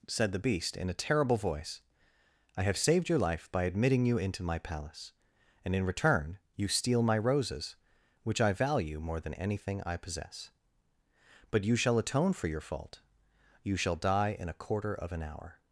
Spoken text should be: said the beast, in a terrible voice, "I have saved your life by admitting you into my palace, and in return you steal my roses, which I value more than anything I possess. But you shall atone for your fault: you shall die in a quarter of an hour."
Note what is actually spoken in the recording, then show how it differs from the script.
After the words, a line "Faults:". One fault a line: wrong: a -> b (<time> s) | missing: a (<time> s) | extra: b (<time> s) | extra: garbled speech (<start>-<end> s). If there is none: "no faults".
said the beast, in a terrible voice, "I have saved your life by admitting you into my palace, and in return you steal my roses, which I value more than anything I possess. But you shall atone for your fault: you shall die in a quarter of an hour."
Faults:
no faults